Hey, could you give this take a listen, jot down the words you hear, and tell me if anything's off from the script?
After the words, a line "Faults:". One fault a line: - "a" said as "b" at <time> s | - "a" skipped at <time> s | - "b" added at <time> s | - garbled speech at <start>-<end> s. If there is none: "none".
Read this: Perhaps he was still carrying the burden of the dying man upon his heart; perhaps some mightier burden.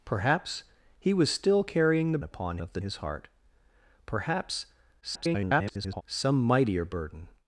Perhaps he was still carrying the upon of the his heart; perhaps [garbled] some mightier burden.
Faults:
- "burden" said as "upon" at 2.2 s
- "dying man upon" skipped at 2.8 s
- garbled speech at 5.0-6.0 s